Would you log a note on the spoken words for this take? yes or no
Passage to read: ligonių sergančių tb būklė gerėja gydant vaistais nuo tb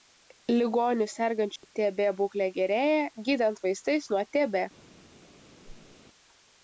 no